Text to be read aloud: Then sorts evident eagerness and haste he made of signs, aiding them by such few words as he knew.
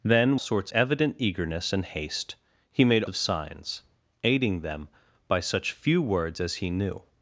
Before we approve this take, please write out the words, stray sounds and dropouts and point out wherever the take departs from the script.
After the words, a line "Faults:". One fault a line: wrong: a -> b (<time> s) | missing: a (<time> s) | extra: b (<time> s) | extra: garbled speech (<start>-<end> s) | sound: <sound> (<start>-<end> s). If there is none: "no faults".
Then sorts evident eagerness and haste he made of signs, aiding them by such few words as he knew.
Faults:
no faults